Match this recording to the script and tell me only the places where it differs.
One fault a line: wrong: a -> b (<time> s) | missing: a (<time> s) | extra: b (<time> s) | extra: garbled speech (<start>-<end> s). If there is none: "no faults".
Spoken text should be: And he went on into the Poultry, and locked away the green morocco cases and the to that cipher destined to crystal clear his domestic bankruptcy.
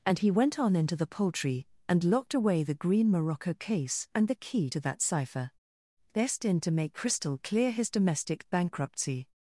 wrong: cases -> case (3.5 s)
extra: key (4.3 s)
extra: make (6.7 s)